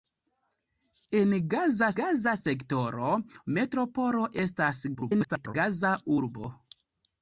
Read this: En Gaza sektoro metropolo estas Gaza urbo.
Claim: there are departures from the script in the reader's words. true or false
true